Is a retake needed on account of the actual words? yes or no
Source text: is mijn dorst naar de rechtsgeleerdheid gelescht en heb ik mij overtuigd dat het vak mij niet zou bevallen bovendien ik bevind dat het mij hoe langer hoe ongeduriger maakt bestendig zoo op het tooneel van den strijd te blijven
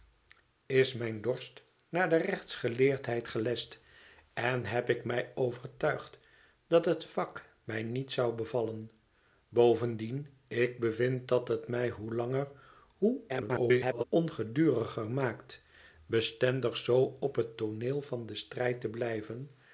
yes